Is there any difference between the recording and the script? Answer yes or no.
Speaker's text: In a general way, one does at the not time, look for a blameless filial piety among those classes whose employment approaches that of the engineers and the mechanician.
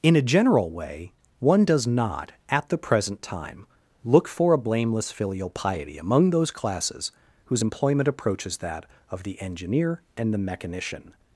yes